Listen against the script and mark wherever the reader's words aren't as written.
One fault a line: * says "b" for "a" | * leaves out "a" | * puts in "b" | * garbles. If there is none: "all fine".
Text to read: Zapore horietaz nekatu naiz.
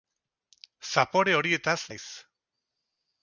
* leaves out "nekatu"